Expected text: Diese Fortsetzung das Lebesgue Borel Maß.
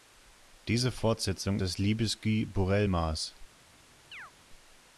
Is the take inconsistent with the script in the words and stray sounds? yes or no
yes